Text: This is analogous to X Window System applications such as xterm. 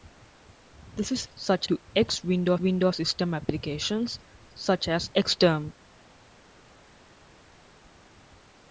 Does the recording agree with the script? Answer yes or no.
no